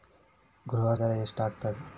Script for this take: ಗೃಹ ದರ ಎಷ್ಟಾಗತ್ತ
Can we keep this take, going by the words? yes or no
yes